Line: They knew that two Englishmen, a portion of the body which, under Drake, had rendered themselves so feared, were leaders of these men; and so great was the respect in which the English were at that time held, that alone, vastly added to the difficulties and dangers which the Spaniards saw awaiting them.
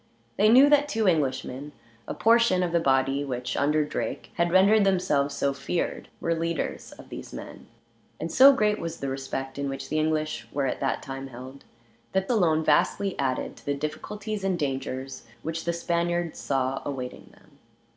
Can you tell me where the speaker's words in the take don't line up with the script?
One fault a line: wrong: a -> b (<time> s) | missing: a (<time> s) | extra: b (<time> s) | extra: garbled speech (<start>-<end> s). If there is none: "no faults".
no faults